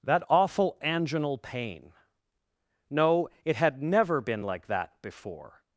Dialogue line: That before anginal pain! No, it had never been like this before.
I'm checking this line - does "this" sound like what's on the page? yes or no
no